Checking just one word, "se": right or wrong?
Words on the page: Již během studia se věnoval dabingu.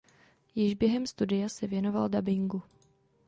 right